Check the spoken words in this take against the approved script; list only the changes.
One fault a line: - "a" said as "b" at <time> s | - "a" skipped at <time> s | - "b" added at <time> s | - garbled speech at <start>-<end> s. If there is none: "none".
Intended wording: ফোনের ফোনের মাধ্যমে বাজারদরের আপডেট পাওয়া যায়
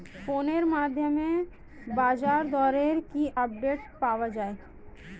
- "ফোনের" skipped at 0.6 s
- "কি" added at 3.1 s